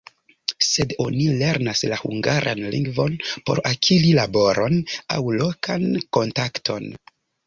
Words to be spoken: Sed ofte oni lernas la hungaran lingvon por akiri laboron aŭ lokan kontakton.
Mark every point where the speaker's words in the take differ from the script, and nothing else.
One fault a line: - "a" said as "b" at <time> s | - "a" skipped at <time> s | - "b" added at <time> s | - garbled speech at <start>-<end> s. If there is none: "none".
- "ofte" skipped at 0.9 s